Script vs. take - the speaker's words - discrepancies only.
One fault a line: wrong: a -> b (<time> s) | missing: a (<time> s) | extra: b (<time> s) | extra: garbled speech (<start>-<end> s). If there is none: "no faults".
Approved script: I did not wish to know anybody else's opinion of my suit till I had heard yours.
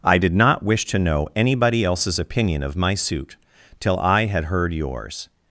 no faults